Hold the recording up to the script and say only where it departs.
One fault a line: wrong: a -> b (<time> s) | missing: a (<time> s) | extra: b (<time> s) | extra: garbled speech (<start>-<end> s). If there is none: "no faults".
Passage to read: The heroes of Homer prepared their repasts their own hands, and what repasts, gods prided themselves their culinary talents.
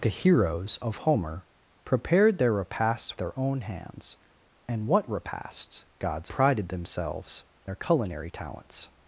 no faults